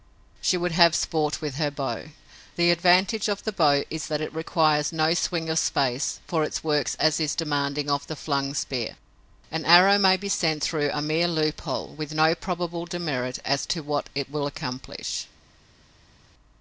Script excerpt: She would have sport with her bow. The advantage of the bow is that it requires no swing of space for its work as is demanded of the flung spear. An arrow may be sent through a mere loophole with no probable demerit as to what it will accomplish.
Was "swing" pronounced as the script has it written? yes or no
yes